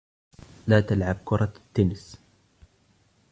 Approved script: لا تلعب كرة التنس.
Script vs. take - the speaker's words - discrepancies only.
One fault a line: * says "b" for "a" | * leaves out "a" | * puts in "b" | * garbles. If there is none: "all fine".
all fine